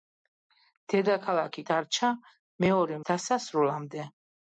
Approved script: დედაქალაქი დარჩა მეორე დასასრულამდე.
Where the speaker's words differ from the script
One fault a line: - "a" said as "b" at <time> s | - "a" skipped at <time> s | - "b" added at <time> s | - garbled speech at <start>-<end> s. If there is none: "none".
none